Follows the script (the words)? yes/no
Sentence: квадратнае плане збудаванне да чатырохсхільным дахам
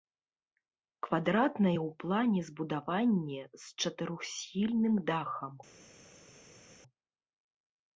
no